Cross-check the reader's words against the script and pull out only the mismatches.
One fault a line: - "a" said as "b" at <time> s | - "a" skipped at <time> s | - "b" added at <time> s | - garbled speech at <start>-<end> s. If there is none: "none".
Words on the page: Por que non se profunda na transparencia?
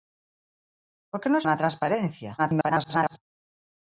- "se profunda" skipped at 1.4 s
- garbled speech at 2.4-3.2 s